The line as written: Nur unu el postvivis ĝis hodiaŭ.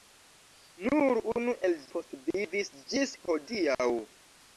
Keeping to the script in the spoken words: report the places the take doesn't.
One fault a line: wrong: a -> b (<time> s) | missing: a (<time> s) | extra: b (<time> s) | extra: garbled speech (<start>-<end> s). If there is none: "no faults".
no faults